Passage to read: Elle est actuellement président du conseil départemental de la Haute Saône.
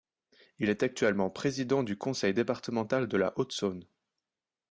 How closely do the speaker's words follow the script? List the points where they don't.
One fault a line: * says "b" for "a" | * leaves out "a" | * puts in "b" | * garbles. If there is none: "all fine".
* says "Il" for "Elle"